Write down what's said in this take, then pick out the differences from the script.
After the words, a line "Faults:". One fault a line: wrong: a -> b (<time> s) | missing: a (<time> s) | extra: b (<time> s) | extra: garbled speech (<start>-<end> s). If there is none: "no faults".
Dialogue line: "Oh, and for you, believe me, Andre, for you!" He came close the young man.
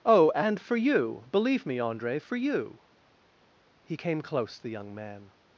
"Oh, and for you, believe me, Andre, for you!" He came close the young man.
Faults:
no faults